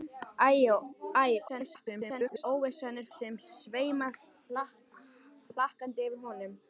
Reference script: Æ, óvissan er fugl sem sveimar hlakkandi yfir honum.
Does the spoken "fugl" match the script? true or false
false